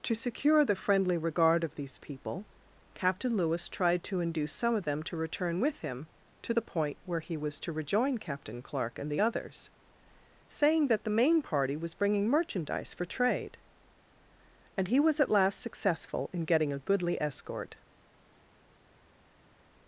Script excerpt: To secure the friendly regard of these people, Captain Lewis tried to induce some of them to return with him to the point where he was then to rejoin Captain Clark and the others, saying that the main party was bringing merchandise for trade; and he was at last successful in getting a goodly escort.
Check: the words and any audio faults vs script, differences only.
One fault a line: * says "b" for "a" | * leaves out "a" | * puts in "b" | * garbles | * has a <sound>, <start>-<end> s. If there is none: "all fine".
* leaves out "then"